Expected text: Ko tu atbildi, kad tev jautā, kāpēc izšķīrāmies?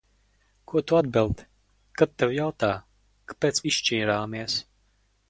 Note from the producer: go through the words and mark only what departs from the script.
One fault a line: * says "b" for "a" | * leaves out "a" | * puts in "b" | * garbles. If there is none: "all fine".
all fine